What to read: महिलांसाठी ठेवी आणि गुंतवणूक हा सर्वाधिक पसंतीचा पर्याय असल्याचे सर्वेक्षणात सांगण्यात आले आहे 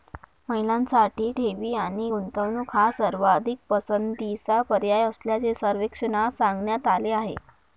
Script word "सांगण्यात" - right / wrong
right